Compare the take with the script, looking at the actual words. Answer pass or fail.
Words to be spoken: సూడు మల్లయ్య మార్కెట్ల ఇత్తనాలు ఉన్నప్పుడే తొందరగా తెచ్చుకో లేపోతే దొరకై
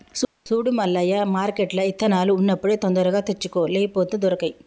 pass